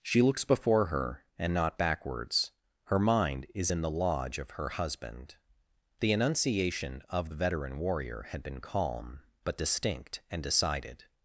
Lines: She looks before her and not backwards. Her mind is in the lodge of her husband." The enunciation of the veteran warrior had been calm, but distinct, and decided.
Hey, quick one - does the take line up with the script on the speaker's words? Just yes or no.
yes